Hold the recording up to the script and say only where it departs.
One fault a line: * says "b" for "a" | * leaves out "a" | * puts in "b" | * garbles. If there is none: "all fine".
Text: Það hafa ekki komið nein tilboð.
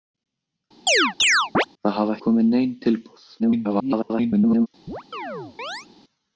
* leaves out "ekki"
* garbles